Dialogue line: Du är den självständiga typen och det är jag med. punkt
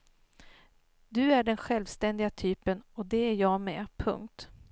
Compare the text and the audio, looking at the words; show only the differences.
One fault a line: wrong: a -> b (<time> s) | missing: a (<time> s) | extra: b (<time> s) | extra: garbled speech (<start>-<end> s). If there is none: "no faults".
no faults